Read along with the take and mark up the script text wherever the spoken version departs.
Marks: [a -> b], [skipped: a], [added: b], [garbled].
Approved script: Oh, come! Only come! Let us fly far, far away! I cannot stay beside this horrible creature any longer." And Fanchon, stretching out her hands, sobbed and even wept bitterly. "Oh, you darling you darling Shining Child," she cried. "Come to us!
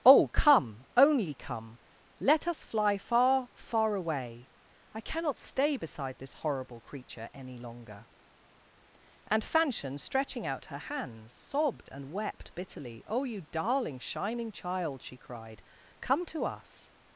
Oh, come! Only come! Let us fly far, far away! I cannot stay beside this horrible creature any longer." And Fanchon, stretching out her hands, sobbed and [skipped: even] wept bitterly. "Oh, you darling [skipped: you darling] Shining Child," she cried. "Come to us!